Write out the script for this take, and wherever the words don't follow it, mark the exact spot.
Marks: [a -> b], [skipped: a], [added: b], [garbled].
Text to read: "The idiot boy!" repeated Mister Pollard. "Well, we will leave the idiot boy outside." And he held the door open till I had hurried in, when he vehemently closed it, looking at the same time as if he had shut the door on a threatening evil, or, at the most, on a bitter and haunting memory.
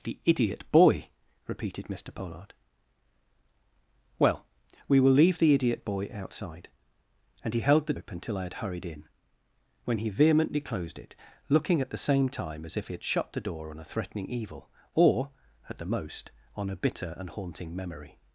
"The idiot boy!" repeated Mister Pollard. "Well, we will leave the idiot boy outside." And he held the [skipped: door] open till I had hurried in, when he vehemently closed it, looking at the same time as if he had shut the door on a threatening evil, or, at the most, on a bitter and haunting memory.